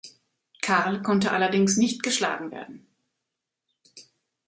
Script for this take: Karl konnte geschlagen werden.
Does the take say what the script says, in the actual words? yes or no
no